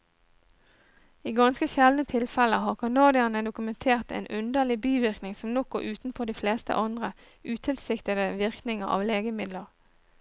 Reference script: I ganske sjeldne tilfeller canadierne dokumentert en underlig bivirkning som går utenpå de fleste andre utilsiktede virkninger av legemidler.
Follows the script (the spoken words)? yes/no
no